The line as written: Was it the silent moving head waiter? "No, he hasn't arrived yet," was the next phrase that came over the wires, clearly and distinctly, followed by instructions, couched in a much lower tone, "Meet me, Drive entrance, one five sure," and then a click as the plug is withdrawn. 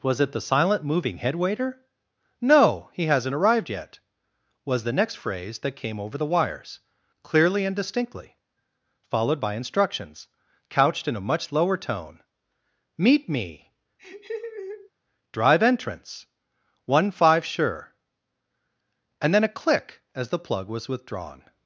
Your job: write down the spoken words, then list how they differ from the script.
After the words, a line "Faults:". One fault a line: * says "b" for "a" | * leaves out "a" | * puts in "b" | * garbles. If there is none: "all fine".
Was it the silent moving head waiter? "No, he hasn't arrived yet," was the next phrase that came over the wires, clearly and distinctly, followed by instructions, couched in a much lower tone, "Meet me, Drive entrance, one five sure," and then a click as the plug was withdrawn.
Faults:
* says "was" for "is"